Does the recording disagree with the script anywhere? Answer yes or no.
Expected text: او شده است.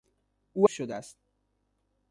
no